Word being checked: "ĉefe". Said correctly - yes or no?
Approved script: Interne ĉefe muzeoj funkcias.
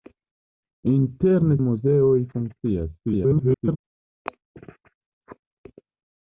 no